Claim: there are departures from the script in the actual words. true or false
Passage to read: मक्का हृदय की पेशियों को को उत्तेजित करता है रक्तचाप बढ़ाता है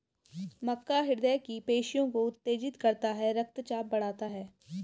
true